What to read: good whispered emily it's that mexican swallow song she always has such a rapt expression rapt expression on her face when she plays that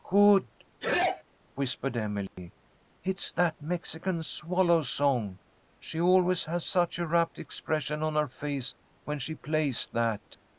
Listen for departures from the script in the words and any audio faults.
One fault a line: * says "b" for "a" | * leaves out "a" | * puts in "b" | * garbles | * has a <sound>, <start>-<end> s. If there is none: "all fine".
* has a sneeze, 0.8-1.2 s
* has a dropout, 2.3-2.4 s
* leaves out "rapt expression"